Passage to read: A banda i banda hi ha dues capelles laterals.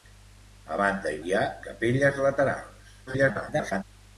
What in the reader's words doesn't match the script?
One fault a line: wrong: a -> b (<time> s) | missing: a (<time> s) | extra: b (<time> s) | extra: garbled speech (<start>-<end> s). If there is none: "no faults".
missing: banda (1.2 s)
missing: dues (1.5 s)
extra: garbled speech (3.1-3.8 s)